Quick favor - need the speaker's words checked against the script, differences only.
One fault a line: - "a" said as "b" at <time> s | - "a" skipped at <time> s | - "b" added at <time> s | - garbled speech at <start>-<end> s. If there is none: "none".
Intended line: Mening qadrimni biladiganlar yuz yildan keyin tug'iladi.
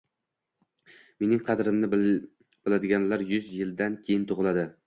none